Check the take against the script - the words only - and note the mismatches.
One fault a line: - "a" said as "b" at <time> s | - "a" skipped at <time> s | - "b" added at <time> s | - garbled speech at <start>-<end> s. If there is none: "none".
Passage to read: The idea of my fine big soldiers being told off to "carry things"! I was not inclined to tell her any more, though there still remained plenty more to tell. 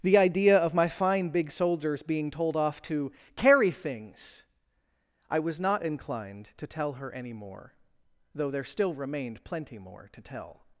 none